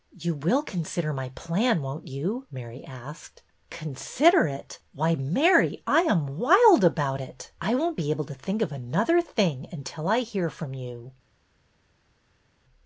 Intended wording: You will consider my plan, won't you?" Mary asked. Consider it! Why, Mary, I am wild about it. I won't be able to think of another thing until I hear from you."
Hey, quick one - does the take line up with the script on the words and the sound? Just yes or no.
yes